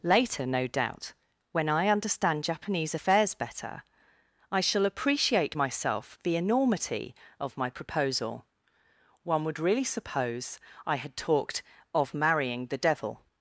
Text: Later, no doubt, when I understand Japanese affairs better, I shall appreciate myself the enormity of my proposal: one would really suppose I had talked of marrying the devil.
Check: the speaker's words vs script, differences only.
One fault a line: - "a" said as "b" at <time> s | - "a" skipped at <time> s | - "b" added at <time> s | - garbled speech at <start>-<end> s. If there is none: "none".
none